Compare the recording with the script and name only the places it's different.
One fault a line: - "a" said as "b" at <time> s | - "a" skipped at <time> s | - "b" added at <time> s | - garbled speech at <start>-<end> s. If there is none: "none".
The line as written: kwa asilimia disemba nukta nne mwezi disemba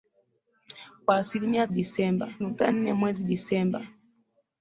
none